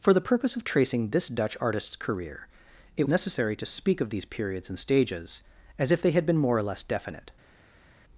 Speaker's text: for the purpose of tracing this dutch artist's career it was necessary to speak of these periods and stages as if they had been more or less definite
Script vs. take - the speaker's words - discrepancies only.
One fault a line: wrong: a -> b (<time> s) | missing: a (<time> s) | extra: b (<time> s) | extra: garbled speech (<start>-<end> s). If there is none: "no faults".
missing: was (3.1 s)